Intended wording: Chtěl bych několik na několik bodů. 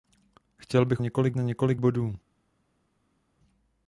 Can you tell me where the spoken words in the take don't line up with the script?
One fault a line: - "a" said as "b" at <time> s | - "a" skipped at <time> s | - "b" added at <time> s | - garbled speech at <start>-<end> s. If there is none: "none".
none